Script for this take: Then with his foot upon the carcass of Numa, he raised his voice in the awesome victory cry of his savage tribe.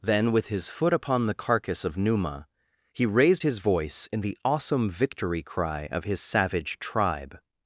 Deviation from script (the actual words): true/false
false